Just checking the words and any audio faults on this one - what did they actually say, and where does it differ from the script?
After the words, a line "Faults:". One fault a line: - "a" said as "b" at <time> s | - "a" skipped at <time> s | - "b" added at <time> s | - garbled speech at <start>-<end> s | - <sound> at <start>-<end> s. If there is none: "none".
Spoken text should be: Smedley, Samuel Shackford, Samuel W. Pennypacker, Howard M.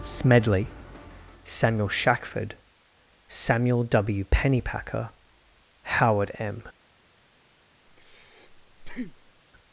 Smedley, Samuel Shackford, Samuel W. Pennypacker, Howard M.
Faults:
- breath at 7.9-9.4 s